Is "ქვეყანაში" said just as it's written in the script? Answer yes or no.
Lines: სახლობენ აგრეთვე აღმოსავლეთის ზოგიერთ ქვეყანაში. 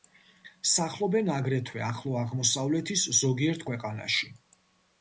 yes